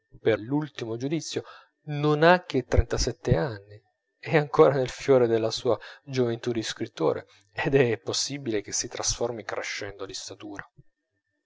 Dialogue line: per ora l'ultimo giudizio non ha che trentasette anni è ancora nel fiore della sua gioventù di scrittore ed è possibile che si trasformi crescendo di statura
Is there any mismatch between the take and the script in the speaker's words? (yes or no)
yes